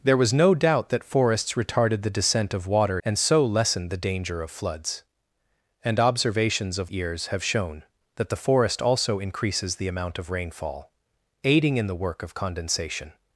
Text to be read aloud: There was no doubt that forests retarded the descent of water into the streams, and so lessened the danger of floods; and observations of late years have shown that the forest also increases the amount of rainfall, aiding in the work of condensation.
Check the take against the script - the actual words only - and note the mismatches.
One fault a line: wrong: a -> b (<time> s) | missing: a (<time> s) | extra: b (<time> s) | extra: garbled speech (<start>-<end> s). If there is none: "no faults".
missing: into the streams (3.0 s)
missing: late (6.9 s)